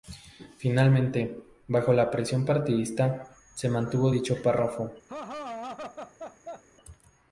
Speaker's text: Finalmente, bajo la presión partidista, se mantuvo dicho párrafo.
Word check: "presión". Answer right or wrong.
right